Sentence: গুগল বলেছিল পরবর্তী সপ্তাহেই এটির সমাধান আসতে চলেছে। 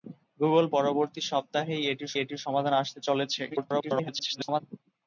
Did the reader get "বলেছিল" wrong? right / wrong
wrong